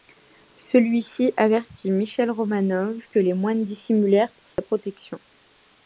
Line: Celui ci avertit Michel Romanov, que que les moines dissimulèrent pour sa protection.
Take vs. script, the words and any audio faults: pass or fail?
fail